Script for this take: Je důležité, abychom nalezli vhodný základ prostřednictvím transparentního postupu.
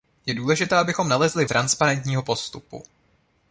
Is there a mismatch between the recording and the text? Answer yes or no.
yes